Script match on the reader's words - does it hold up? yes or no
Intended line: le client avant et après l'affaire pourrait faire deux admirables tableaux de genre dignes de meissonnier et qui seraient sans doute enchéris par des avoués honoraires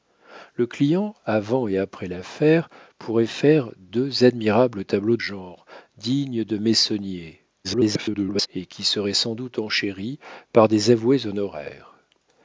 no